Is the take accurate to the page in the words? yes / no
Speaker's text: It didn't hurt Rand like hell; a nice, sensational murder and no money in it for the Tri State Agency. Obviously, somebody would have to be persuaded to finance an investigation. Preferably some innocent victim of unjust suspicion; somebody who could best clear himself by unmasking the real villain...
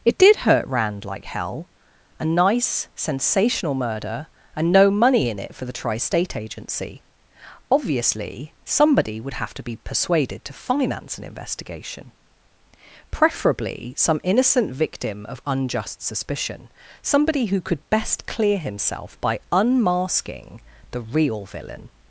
no